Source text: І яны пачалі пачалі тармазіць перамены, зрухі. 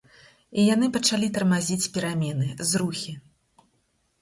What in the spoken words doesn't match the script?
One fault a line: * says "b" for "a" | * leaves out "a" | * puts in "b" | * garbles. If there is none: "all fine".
* leaves out "пачалі"